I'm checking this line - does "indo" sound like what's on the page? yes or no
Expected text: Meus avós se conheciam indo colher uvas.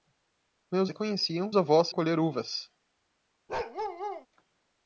no